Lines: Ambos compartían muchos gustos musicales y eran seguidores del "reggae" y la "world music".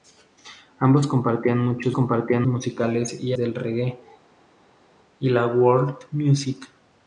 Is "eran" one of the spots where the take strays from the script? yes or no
yes